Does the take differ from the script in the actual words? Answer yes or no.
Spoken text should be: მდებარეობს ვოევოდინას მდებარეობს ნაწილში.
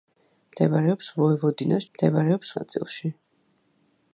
no